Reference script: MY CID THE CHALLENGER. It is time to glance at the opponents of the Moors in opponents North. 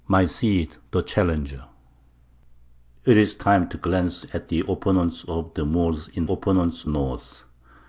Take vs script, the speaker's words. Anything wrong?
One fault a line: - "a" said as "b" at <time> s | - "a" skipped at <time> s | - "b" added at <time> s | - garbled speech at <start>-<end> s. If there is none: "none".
none